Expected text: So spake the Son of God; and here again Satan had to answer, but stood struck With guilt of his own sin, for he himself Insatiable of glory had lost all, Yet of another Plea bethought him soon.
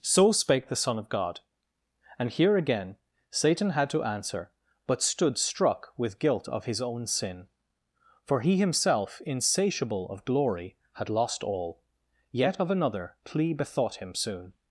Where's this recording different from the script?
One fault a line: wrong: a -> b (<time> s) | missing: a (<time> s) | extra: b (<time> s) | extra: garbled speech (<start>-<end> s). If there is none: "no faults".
no faults